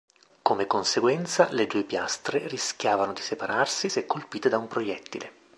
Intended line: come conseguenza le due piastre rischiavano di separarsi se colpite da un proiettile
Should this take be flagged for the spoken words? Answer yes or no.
no